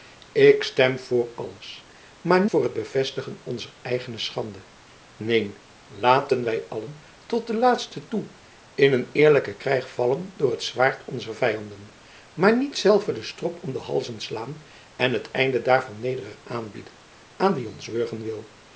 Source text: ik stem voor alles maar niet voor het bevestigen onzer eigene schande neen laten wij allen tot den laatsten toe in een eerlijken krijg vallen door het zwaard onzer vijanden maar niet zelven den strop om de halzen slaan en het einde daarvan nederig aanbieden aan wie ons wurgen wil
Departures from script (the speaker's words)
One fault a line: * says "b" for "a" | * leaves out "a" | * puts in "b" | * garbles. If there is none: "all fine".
* leaves out "niet"